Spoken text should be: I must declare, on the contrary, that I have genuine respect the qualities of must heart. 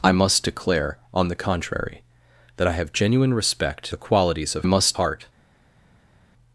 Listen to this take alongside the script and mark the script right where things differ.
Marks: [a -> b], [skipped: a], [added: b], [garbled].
I must declare, on the contrary, that I have genuine respect the qualities of must heart.